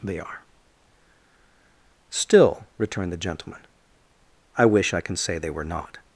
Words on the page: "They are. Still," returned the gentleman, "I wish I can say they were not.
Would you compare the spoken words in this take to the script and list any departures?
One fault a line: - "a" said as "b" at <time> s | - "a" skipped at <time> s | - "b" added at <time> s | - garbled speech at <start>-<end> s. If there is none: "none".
none